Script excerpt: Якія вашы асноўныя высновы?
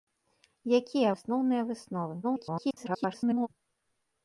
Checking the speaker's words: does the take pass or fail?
fail